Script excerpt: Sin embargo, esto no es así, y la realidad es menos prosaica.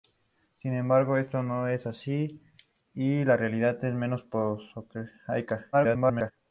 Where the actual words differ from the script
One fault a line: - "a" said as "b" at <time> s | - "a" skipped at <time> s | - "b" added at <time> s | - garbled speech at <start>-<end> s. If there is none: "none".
- garbled speech at 5.7-6.3 s